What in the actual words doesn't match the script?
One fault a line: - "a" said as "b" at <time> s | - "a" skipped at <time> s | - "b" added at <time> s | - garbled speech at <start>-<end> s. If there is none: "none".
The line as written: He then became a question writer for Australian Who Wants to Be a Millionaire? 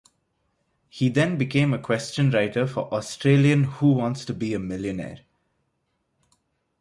none